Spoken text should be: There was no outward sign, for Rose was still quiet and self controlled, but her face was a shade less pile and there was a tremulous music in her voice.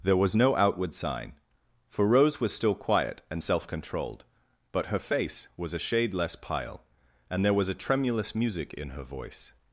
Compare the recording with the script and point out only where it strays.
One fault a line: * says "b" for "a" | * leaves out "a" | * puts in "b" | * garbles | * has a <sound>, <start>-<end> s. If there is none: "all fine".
all fine